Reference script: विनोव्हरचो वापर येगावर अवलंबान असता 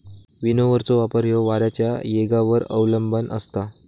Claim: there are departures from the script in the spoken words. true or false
true